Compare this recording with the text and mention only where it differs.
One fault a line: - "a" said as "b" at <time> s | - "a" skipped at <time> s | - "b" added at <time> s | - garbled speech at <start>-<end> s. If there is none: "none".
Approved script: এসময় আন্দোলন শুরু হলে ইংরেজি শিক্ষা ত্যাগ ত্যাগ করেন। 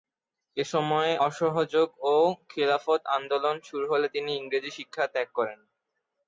- "অসহযোগ ও খিলাফত" added at 1.3 s
- "তিনি" added at 4.1 s
- "ত্যাগ" skipped at 5.3 s